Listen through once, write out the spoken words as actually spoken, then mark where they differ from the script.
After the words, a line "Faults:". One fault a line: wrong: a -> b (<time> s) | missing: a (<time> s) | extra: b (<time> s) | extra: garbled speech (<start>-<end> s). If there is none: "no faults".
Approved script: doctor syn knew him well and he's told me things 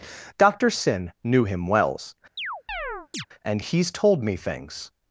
doctor syn knew him wells and he's told me things
Faults:
wrong: well -> wells (1.7 s)